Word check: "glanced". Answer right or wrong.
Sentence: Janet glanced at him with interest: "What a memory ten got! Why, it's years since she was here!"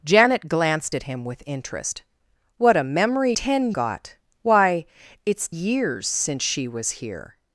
right